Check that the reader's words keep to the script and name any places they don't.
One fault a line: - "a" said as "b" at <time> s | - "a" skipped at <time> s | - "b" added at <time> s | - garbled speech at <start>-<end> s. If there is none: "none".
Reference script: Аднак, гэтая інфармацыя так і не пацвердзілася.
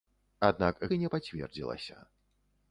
- "гэтая інфармацыя так" skipped at 0.8 s